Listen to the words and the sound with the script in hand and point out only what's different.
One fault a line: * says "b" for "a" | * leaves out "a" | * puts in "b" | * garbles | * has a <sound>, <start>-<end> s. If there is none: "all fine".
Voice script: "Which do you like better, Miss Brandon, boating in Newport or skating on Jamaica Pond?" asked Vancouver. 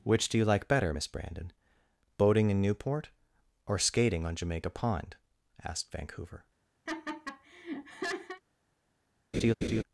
* has a laugh, 6.9-8.4 s
* has a laugh, 9.3-9.8 s